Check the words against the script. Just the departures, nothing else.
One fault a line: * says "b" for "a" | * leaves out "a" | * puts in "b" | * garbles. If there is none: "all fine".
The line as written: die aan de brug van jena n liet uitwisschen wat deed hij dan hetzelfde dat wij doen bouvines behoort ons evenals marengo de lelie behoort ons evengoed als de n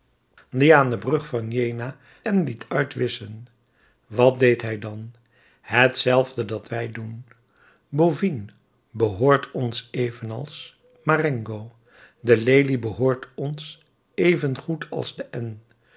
all fine